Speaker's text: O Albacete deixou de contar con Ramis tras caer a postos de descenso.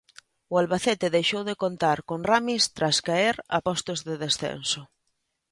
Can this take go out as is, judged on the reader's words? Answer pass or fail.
pass